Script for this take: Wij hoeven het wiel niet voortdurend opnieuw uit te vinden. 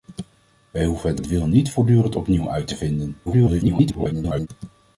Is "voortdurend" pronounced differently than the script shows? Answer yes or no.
no